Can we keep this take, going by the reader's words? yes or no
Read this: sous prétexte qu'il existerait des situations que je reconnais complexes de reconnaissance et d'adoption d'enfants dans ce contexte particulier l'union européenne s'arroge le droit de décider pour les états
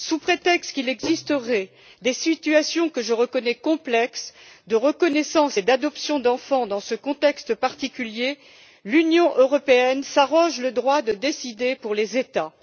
yes